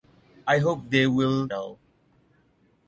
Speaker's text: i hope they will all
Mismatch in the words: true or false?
false